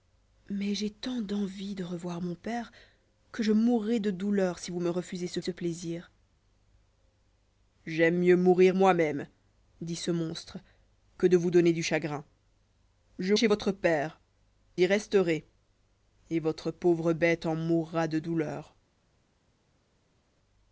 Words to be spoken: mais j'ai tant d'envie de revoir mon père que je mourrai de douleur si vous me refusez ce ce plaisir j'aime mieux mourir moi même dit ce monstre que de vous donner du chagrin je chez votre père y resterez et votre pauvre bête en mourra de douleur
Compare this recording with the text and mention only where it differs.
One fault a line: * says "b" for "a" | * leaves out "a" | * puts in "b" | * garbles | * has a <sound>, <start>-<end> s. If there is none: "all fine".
all fine